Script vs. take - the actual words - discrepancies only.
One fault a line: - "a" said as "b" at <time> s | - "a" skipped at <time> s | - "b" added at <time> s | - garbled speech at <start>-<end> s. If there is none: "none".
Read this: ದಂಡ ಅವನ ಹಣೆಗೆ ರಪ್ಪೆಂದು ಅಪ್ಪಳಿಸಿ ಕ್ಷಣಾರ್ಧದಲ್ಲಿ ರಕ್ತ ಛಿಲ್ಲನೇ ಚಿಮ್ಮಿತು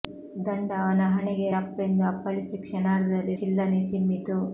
- "ರಕ್ತ" skipped at 3.3 s